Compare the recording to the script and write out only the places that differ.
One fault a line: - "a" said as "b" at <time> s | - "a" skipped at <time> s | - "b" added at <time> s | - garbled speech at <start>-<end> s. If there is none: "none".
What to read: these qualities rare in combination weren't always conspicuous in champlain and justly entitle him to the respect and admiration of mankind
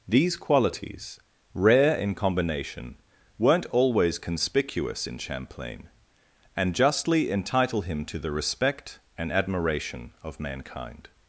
none